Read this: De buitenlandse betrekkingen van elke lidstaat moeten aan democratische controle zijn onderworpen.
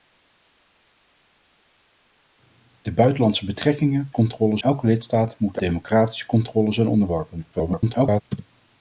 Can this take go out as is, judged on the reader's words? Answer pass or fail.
fail